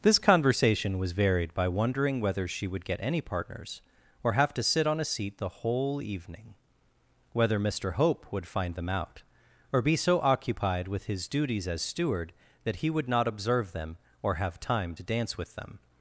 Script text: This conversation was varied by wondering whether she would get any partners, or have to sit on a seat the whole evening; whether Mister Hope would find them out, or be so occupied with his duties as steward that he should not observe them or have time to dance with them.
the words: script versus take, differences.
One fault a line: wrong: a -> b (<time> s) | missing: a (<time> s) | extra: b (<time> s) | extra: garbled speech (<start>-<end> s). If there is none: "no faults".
wrong: should -> would (12.9 s)